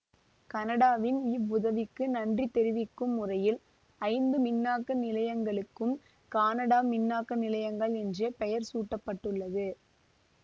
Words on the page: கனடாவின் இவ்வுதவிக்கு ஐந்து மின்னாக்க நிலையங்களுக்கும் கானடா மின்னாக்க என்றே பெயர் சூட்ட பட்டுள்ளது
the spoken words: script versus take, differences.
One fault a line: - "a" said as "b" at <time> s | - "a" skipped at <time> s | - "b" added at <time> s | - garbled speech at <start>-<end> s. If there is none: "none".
- "நன்றி தெரிவிக்கும் முறையில்" added at 2.1 s
- "நிலையங்கள்" added at 7.4 s